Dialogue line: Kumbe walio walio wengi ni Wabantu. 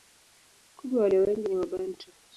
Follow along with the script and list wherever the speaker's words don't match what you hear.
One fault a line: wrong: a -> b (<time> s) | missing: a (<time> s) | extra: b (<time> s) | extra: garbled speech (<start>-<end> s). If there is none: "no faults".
missing: walio (1.2 s)